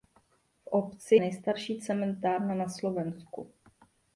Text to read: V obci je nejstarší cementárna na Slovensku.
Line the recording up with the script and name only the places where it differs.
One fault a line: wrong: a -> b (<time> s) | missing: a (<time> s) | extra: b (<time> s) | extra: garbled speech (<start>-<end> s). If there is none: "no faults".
missing: je (1.1 s)